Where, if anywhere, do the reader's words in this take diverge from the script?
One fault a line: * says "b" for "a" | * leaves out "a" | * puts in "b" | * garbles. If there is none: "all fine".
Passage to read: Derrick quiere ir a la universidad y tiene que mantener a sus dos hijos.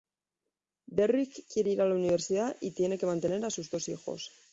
all fine